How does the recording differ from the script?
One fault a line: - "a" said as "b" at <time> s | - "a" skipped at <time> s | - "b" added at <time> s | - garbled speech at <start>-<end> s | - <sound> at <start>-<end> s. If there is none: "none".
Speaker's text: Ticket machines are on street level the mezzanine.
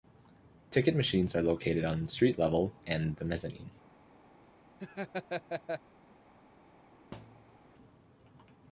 - "located" added at 1.4 s
- "and" added at 2.9 s
- laugh at 4.8-5.8 s
- thud at 7.1-7.7 s